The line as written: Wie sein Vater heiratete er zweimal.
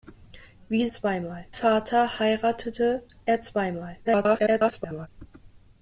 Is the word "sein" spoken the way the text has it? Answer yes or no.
no